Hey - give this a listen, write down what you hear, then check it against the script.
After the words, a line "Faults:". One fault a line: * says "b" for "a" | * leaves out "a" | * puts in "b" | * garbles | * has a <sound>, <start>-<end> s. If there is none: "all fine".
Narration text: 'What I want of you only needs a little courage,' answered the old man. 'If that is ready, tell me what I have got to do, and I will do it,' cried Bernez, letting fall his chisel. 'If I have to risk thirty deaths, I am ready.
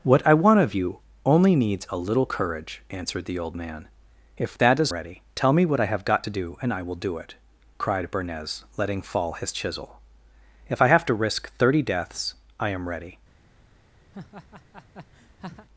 'What I want of you only needs a little courage,' answered the old man. 'If that is ready, tell me what I have got to do, and I will do it,' cried Bernez, letting fall his chisel. 'If I have to risk thirty deaths, I am ready.
Faults:
* has a laugh, 14.1-15.7 s